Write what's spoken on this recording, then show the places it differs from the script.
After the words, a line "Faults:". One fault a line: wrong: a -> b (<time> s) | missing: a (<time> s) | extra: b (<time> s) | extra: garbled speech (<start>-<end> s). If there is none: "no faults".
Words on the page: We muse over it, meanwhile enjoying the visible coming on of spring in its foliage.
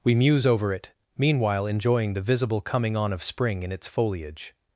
We muse over it, meanwhile enjoying the visible coming on of spring in its foliage.
Faults:
no faults